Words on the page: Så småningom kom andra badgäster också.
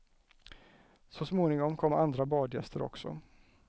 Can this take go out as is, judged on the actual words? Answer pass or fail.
pass